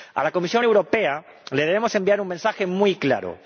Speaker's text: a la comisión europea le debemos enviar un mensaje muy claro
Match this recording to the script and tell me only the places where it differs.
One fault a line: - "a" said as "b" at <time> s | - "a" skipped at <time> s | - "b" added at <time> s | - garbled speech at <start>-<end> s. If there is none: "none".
none